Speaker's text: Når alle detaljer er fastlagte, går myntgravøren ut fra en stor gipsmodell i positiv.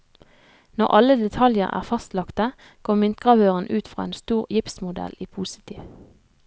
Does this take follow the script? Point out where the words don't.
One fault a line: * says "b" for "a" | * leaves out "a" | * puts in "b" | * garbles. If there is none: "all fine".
all fine